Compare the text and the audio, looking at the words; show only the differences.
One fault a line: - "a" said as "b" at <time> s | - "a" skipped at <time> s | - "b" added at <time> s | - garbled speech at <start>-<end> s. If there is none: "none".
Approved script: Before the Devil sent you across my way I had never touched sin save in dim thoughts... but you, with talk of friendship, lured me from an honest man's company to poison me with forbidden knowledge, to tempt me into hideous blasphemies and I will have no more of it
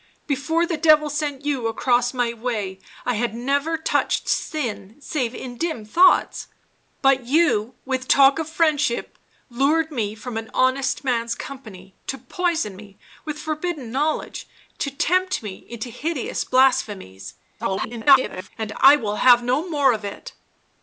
- garbled speech at 17.6-18.5 s